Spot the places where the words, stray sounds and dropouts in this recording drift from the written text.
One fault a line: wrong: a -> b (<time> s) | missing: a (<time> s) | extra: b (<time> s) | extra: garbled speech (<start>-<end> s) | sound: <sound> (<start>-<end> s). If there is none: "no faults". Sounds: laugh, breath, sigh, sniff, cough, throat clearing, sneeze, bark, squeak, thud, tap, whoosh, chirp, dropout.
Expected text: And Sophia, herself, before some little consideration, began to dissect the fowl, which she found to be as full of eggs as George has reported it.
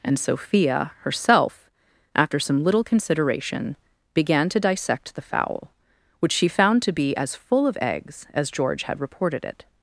wrong: before -> after (2.1 s)
wrong: has -> had (8.8 s)